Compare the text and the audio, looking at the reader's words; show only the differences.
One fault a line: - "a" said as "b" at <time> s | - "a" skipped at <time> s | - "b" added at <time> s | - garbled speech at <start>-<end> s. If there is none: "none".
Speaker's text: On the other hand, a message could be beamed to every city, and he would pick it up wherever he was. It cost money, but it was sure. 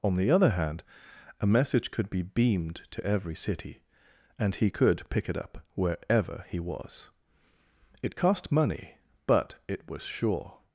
- "would" said as "could" at 4.7 s